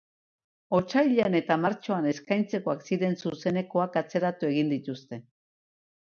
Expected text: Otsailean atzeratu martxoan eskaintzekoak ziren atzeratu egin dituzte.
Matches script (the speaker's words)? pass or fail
fail